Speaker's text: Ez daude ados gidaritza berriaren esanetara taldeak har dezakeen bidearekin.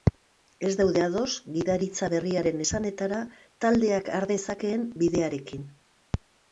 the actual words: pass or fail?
pass